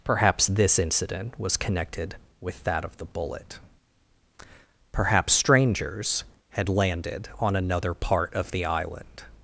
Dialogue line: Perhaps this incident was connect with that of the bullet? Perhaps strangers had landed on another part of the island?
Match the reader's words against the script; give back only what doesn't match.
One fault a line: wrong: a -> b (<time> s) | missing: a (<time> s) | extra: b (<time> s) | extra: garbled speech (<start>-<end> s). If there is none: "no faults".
wrong: connect -> connected (1.6 s)